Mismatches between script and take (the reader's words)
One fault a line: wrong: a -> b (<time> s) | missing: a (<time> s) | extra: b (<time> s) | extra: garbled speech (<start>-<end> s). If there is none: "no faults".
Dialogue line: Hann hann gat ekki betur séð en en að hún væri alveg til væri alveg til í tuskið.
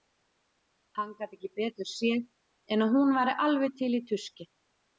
missing: hann (1.1 s)
missing: en (2.9 s)
missing: væri alveg til (4.0 s)